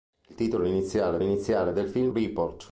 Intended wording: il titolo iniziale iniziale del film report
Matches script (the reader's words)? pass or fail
pass